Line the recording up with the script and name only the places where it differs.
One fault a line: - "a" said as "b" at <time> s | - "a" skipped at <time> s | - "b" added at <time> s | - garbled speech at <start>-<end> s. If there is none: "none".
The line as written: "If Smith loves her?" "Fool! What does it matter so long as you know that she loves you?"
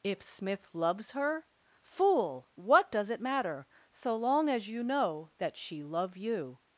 - "loves" said as "love" at 5.8 s